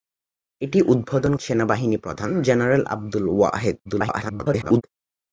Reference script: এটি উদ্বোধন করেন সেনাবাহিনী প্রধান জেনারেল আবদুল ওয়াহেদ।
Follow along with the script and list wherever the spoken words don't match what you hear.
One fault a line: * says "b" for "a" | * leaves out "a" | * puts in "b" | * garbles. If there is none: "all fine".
* leaves out "করেন"
* garbles